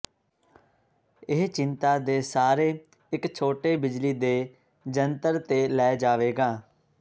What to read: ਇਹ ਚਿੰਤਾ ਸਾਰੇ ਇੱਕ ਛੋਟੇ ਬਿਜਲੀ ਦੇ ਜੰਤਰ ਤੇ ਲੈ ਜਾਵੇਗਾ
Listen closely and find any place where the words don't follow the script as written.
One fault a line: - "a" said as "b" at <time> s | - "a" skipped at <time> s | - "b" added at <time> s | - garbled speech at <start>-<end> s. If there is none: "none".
- "ਦੇ" added at 2.0 s